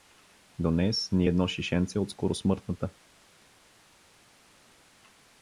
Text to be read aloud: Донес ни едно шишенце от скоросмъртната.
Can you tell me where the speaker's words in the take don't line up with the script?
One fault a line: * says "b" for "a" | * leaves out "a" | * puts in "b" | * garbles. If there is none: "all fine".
all fine